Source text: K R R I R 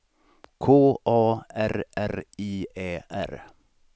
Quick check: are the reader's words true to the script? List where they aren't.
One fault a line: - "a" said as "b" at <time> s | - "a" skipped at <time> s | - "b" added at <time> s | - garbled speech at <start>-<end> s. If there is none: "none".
- "A" added at 1.1 s
- "Ä" added at 2.8 s